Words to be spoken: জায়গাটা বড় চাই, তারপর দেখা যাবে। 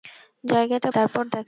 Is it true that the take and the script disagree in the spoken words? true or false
true